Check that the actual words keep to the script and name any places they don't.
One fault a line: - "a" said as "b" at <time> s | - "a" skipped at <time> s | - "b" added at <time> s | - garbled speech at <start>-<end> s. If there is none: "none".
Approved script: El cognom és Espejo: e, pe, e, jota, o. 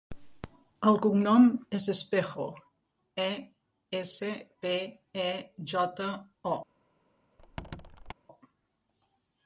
- "essa" added at 4.0 s